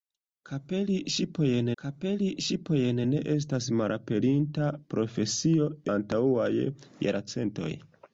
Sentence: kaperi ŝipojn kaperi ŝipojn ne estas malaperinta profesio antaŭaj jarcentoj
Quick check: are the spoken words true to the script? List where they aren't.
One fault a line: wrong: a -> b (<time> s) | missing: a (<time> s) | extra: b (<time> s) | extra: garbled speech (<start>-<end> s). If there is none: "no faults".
no faults